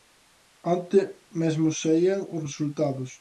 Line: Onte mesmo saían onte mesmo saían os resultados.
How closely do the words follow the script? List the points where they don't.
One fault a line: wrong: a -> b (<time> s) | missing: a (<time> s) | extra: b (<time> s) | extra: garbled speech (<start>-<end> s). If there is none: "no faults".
missing: onte mesmo saían (2.2 s)